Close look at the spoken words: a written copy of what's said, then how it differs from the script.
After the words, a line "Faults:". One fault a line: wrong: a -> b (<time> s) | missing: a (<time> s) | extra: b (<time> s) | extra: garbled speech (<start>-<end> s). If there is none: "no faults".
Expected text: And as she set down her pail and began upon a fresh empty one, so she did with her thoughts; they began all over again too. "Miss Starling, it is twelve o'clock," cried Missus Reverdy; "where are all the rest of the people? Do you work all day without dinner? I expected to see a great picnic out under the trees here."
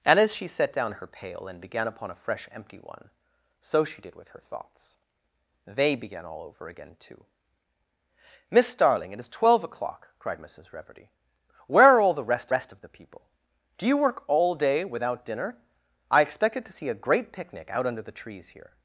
And as she set down her pail and began upon a fresh empty one, so she did with her thoughts; they began all over again too. "Miss Starling, it is twelve o'clock," cried Missus Reverdy; "where are all the rest rest of the people? Do you work all day without dinner? I expected to see a great picnic out under the trees here."
Faults:
extra: rest (12.5 s)